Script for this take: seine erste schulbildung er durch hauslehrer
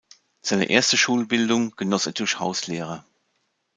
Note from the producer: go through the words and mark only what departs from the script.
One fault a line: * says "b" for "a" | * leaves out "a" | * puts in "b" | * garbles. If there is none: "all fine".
* puts in "genoss"